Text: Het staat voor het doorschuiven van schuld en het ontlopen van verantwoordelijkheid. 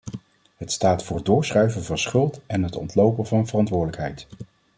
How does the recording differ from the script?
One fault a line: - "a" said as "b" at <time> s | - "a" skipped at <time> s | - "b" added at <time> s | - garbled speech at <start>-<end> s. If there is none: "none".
none